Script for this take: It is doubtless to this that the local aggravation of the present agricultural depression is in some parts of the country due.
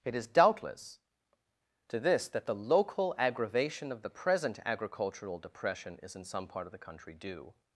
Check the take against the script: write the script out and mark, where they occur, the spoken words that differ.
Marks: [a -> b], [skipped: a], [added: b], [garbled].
It is doubtless to this that the local aggravation of the present agricultural depression is in some [parts -> part] of the country due.